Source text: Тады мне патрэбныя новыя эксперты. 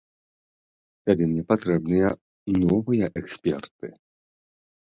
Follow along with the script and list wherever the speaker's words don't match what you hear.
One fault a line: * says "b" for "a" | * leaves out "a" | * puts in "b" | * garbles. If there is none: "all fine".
all fine